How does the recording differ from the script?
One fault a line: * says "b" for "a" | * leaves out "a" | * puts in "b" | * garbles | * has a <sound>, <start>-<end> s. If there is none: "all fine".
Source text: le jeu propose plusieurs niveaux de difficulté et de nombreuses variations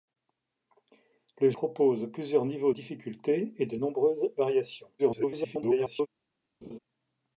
* leaves out "jeu"
* leaves out "de"
* garbles
* has a laugh, 6.6-6.8 s